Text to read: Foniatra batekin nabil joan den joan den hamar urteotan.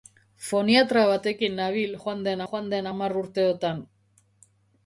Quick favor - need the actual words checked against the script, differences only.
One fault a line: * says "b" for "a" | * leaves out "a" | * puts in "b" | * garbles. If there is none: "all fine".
all fine